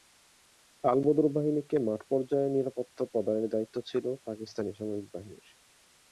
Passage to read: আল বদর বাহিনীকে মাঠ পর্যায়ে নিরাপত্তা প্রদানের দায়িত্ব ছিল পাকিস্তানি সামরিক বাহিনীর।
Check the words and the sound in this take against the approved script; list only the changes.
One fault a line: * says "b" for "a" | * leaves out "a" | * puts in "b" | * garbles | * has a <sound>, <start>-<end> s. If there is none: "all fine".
all fine